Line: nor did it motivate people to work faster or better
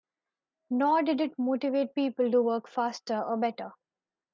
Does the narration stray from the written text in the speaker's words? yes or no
no